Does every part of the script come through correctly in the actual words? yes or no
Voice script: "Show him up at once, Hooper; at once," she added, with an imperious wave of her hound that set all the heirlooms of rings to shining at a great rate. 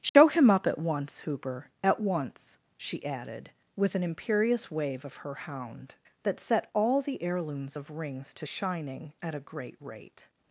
yes